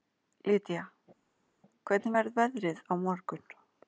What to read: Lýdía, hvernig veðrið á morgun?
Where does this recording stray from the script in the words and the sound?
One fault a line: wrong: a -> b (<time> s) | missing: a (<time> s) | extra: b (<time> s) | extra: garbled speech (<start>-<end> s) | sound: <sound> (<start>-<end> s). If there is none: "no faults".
extra: verður (2.2 s)